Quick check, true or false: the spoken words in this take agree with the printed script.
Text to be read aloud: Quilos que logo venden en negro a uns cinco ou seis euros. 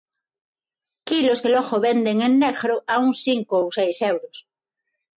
true